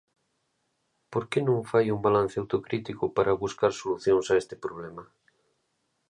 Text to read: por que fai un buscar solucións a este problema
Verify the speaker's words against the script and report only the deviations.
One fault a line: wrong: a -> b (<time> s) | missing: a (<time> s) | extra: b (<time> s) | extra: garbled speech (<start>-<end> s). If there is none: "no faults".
extra: non (1.5 s)
extra: balance autocrítico para (2.1 s)